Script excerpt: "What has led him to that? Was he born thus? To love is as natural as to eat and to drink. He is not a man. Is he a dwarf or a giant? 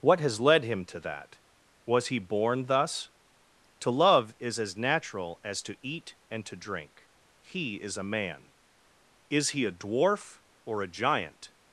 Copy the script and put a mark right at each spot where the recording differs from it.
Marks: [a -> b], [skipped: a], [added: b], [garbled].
"What has led him to that? Was he born thus? To love is as natural as to eat and to drink. He is [skipped: not] a man. Is he a dwarf or a giant?